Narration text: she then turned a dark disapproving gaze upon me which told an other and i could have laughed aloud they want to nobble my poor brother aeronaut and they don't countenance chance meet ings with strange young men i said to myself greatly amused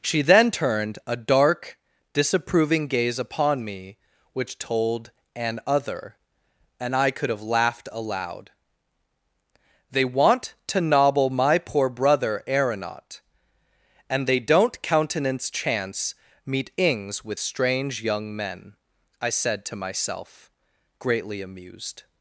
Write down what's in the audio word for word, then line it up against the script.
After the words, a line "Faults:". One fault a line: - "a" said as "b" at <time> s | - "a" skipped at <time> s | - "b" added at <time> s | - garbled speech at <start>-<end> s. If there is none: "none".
she then turned a dark disapproving gaze upon me which told an other and i could have laughed aloud they want to nobble my poor brother aeronaut and they don't countenance chance meet ings with strange young men i said to myself greatly amused
Faults:
none